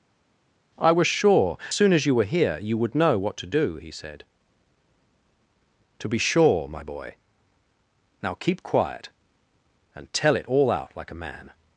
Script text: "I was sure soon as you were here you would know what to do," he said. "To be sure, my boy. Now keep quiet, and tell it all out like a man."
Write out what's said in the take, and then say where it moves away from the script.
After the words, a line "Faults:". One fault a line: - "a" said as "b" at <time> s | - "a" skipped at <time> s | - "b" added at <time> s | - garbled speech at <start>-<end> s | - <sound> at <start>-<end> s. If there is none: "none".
"I was sure soon as you were here you would know what to do," he said. "To be sure, my boy. Now keep quiet, and tell it all out like a man."
Faults:
none